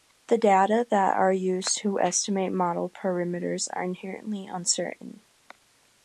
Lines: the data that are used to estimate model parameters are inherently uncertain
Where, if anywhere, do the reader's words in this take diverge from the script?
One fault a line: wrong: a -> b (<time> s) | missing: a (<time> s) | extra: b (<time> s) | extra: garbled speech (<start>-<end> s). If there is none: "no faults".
no faults